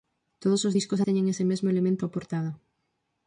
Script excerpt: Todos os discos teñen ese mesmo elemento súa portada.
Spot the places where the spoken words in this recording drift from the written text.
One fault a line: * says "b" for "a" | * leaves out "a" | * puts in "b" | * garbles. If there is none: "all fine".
all fine